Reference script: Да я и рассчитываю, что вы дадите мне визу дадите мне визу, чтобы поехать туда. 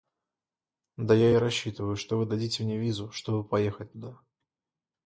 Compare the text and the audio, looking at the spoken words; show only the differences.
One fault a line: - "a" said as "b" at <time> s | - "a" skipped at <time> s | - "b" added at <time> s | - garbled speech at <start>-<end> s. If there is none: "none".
- "дадите мне визу" skipped at 3.1 s